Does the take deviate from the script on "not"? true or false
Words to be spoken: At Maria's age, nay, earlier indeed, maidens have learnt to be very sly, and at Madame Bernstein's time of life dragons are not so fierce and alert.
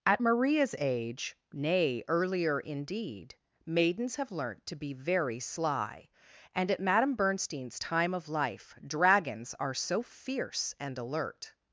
true